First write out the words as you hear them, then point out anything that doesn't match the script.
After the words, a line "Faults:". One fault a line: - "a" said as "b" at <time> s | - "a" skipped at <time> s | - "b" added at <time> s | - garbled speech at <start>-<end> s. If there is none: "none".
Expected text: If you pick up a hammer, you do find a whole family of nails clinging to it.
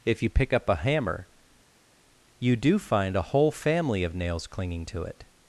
If you pick up a hammer, you do find a whole family of nails clinging to it.
Faults:
none